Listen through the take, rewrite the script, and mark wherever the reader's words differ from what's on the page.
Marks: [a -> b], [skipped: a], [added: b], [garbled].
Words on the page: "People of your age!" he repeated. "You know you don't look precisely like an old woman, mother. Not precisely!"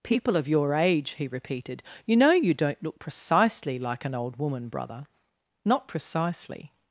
"People of your age!" he repeated. "You know you don't look precisely like an old woman, [mother. -> brother] Not precisely!"